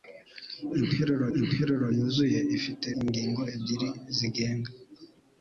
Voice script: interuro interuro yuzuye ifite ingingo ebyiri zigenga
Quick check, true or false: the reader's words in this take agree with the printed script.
true